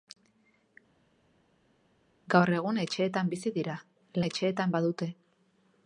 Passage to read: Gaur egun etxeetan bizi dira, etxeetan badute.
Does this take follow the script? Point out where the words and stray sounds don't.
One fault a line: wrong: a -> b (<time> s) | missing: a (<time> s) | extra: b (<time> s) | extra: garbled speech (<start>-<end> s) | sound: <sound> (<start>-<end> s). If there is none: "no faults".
no faults